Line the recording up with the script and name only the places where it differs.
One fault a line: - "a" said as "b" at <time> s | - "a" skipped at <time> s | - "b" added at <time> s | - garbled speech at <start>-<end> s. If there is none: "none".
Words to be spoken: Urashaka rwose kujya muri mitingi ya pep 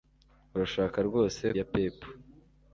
- "kujya muri mitingi" skipped at 1.4 s